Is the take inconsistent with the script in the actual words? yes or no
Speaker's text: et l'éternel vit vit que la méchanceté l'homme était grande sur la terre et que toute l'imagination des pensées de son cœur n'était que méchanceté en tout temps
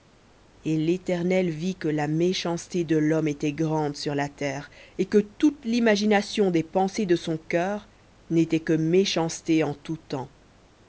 yes